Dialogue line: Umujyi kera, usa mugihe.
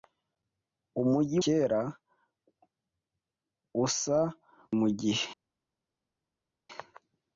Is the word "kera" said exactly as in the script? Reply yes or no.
yes